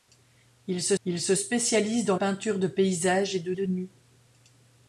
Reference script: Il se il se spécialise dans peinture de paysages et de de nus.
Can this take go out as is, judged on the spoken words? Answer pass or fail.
pass